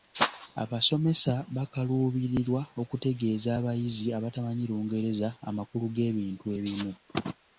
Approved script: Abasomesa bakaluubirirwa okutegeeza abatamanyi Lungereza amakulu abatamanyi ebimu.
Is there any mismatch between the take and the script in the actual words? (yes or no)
yes